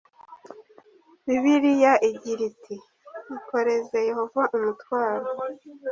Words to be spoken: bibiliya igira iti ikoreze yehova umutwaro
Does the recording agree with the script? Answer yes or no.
yes